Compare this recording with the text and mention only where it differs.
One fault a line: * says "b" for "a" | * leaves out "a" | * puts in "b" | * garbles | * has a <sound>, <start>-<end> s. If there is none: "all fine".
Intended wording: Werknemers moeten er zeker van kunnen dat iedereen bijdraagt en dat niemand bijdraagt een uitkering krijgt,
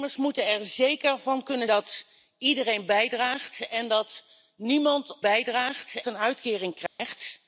* has a dropout, 6.9-7.0 s